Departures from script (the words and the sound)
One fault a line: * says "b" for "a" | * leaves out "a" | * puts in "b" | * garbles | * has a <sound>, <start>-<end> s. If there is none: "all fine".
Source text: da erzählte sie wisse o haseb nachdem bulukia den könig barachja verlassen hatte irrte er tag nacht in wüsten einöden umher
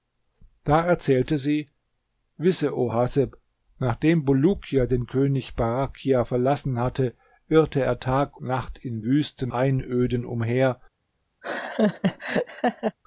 * has a laugh, 11.4-13.0 s